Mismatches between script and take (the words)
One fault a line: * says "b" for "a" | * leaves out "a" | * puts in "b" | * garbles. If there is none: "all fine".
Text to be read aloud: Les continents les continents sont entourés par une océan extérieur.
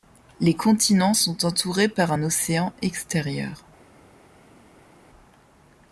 * leaves out "les continents"
* says "un" for "une"